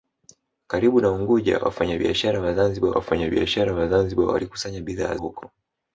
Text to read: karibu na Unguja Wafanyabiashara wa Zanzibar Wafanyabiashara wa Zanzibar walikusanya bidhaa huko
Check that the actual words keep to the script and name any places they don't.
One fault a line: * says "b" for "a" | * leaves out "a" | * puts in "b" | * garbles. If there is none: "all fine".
all fine